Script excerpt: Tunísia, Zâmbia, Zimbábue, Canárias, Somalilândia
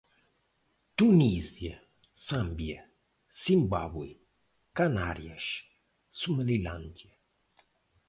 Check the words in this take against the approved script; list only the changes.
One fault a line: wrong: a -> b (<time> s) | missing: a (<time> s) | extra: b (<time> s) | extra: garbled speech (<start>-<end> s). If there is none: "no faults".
no faults